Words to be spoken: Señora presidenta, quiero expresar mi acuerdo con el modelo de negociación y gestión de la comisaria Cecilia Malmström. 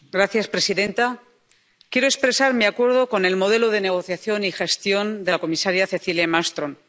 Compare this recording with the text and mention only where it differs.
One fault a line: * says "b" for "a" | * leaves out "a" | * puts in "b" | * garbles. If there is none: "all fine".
all fine